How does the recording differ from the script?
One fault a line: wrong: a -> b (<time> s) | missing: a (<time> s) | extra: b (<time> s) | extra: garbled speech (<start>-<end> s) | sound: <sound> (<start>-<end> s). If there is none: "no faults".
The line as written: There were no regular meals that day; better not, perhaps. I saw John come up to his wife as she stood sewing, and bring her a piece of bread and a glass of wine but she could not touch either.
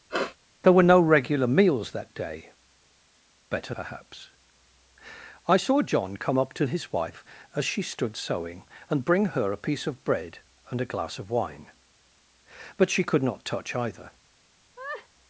sound: sniff (0.1-0.4 s)
missing: not (3.7 s)
sound: laugh (14.8-15.1 s)